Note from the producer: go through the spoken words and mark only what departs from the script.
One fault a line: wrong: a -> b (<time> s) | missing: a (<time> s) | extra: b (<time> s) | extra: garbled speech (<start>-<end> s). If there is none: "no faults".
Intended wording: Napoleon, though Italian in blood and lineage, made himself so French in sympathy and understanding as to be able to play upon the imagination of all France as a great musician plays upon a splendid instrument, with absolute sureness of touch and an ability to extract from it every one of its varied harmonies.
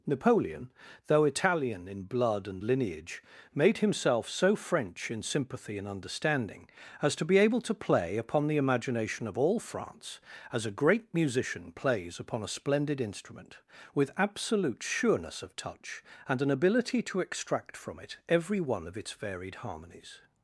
no faults